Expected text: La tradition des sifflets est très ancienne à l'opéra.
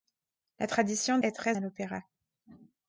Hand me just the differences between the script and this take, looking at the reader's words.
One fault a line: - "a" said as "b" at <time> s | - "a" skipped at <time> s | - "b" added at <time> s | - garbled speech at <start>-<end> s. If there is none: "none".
- "des sifflets" skipped at 1.2 s
- "ancienne" skipped at 1.6 s